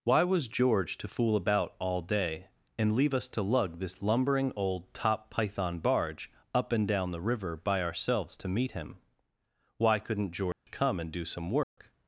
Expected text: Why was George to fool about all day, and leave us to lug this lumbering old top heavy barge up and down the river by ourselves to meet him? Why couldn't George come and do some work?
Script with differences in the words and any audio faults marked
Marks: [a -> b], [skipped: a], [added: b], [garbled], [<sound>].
Why was George to fool about all day, and leave us to lug this lumbering old top [heavy -> python] barge up and down the river by ourselves to meet him? Why couldn't George [dropout] come and do some work? [dropout]